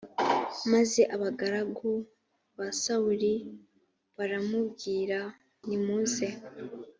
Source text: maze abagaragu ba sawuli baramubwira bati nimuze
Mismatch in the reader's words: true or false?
true